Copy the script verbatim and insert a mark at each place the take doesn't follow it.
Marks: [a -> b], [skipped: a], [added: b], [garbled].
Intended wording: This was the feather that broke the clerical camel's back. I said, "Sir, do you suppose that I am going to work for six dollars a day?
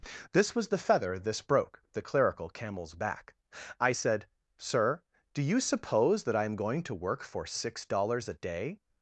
This was the feather [that -> this] broke the clerical camel's back. I said, "Sir, do you suppose that I am going to work for six dollars a day?